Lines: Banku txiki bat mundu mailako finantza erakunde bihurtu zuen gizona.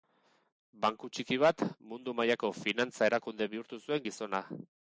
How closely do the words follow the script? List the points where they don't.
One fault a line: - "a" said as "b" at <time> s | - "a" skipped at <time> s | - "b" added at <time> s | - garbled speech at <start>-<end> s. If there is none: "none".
none